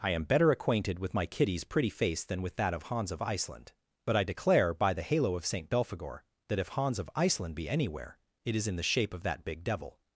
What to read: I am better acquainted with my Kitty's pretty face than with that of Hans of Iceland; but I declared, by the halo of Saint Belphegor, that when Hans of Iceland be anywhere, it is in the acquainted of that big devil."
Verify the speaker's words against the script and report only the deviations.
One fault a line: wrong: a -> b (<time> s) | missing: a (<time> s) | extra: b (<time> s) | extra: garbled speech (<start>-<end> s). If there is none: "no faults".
wrong: declared -> declare (4.2 s)
wrong: when -> if (6.6 s)
wrong: acquainted -> shape (8.8 s)